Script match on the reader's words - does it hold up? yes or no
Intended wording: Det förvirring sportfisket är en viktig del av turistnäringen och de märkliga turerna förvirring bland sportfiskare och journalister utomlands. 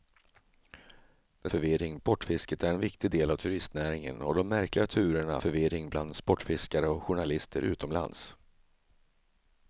yes